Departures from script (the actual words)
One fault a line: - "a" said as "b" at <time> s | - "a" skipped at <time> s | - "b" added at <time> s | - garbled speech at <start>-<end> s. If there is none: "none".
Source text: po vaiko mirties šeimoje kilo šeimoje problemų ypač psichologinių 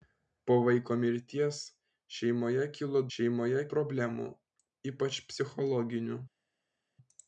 none